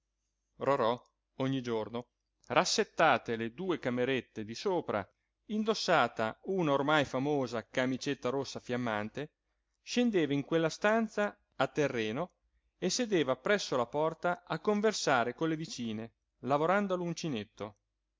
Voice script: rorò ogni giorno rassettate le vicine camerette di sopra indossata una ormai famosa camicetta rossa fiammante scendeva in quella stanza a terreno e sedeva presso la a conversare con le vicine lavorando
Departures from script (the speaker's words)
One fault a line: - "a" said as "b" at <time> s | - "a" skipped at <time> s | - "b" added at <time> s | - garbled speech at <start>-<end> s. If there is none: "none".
- "vicine" said as "due" at 3.5 s
- "porta" added at 13.8 s